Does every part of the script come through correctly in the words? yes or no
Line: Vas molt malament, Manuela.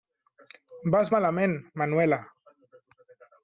no